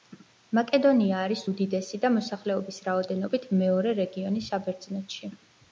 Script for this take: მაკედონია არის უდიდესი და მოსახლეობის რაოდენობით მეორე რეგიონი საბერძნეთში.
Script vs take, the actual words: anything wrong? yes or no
no